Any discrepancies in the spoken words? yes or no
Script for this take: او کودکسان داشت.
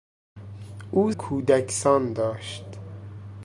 no